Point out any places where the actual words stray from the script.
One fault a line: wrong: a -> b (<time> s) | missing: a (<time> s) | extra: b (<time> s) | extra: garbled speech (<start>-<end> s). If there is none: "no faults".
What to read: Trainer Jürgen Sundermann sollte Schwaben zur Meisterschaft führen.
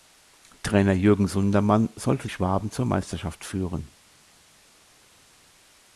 no faults